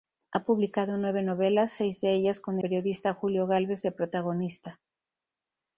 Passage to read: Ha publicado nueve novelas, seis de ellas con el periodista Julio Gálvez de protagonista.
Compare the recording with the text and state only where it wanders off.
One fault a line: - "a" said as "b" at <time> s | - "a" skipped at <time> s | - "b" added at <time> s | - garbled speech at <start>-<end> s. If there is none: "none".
- "el" skipped at 2.6 s